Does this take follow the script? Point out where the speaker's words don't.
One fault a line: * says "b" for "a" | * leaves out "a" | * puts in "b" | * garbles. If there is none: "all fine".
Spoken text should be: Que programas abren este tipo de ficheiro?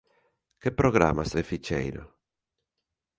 * leaves out "abren este tipo"